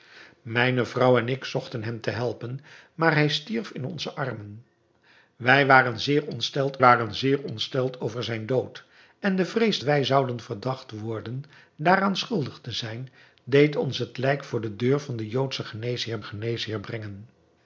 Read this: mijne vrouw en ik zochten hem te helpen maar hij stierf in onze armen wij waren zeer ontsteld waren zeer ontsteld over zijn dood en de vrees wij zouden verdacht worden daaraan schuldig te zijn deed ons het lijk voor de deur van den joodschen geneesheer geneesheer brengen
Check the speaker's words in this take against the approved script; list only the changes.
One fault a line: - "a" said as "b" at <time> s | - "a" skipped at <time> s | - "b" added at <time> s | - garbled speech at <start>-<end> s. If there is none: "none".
none